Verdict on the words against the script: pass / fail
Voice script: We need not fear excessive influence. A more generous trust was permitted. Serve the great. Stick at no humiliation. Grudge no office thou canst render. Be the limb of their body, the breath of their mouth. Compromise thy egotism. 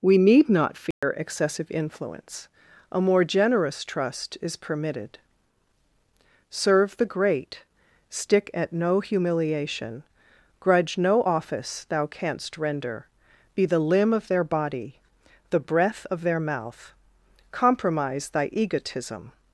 fail